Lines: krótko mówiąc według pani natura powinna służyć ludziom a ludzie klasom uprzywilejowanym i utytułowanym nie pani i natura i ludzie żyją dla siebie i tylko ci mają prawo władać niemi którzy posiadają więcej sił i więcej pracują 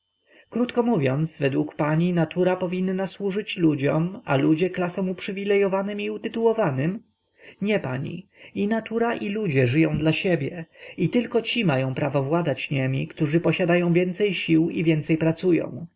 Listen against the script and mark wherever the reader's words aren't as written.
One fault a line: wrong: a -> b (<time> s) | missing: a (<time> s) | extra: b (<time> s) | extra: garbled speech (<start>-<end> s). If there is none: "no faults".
no faults